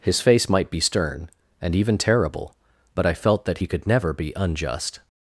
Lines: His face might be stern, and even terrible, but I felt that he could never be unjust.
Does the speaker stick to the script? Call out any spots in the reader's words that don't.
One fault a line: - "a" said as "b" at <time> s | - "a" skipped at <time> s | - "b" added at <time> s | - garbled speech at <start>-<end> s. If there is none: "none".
none